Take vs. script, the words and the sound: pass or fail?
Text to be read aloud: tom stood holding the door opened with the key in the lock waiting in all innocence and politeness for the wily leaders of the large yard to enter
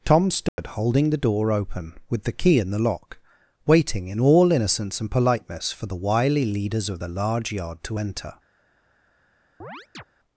fail